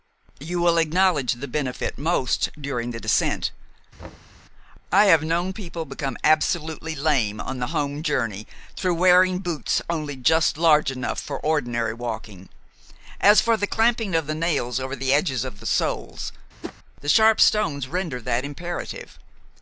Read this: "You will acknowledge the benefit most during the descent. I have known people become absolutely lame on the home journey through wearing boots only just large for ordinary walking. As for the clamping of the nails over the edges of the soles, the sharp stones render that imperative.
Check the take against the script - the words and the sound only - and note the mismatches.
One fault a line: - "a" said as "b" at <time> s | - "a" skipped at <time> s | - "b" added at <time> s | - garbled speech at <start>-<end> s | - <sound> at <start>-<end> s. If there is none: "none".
- thud at 4.0-4.4 s
- "enough" added at 10.9 s
- whoosh at 16.6-16.7 s